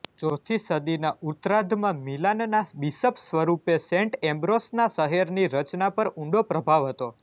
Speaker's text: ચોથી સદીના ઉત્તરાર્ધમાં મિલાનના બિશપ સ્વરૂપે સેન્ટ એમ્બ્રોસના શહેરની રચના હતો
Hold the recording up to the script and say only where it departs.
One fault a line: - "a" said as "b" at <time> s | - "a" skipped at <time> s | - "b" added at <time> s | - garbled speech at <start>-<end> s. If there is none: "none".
- "પર ઊંડો પ્રભાવ" added at 6.0 s